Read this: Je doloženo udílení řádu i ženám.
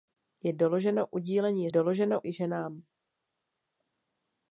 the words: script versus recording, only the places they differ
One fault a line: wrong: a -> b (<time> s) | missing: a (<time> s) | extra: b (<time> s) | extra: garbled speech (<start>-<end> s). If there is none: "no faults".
wrong: řádu -> doloženo (1.7 s)